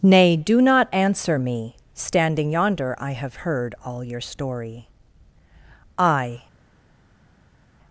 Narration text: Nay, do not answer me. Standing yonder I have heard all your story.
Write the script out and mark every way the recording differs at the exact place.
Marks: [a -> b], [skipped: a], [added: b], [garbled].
Nay, do not answer me. Standing yonder I have heard all your story. [added: I]